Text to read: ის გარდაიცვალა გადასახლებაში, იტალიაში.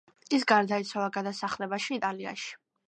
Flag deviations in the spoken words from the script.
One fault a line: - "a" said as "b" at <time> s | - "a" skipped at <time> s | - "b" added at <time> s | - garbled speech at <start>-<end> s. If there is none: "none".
none